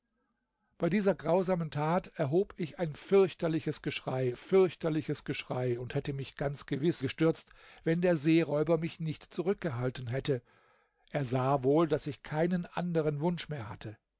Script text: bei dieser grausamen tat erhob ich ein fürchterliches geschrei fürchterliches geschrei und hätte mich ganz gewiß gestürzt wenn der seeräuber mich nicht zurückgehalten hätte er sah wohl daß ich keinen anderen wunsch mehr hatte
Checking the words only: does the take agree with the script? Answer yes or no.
yes